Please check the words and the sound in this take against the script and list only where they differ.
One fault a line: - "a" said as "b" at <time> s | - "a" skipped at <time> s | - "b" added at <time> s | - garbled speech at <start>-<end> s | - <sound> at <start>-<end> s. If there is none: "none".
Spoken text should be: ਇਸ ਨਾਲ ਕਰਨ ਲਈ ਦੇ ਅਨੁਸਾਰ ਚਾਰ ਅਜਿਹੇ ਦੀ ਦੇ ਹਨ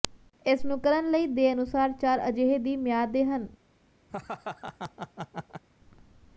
- "ਨਾਲ" said as "ਨੂੰ" at 0.7 s
- "ਮਿਆਦ" added at 2.8 s
- laugh at 4.1-5.6 s